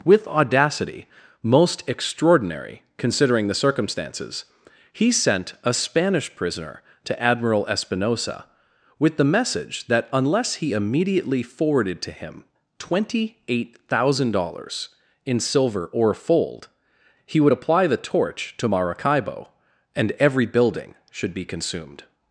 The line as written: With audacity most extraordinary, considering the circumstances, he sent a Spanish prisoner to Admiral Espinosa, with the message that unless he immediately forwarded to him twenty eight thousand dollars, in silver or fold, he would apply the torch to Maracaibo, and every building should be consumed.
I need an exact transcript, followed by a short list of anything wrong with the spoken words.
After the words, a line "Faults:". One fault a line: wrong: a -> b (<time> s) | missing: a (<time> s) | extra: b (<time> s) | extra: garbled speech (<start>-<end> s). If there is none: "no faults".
With audacity most extraordinary, considering the circumstances, he sent a Spanish prisoner to Admiral Espinosa, with the message that unless he immediately forwarded to him twenty eight thousand dollars, in silver or fold, he would apply the torch to Maracaibo, and every building should be consumed.
Faults:
no faults